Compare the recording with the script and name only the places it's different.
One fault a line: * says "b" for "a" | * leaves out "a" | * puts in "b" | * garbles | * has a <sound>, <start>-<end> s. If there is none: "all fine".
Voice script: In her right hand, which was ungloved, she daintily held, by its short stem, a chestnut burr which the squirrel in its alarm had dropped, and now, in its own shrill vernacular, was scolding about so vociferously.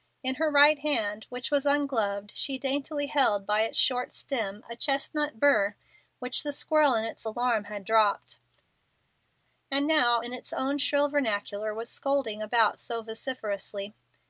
all fine